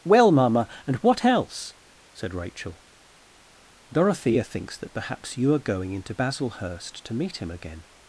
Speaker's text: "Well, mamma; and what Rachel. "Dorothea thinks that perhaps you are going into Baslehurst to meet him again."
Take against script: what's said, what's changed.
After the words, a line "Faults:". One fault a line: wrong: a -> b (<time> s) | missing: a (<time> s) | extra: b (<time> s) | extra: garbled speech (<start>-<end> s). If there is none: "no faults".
"Well, mamma; and what else?" said Rachel. "Dorothea thinks that perhaps you are going into Baslehurst to meet him again."
Faults:
extra: else said (1.2 s)